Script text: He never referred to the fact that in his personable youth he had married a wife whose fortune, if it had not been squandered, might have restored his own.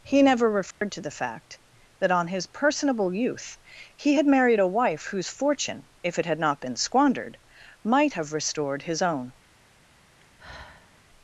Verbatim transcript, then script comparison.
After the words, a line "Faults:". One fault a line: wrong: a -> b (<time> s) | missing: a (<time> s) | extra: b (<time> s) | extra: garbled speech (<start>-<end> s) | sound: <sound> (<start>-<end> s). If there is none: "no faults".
He never referred to the fact that on his personable youth he had married a wife whose fortune, if it had not been squandered, might have restored his own.
Faults:
sound: dropout (0.7-0.8 s)
wrong: in -> on (2.1 s)
sound: sigh (10.2-11.0 s)